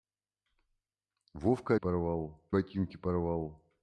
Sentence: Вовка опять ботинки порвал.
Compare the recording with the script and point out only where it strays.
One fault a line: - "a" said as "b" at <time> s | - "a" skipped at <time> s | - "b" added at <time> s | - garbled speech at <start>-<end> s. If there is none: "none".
- "опять" said as "порвал" at 1.8 s